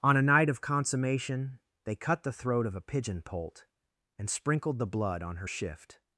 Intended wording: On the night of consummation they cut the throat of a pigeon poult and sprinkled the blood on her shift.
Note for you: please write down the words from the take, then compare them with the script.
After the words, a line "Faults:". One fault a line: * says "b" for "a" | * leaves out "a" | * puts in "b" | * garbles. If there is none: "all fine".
On a night of consummation they cut the throat of a pigeon poult and sprinkled the blood on her shift.
Faults:
* says "a" for "the"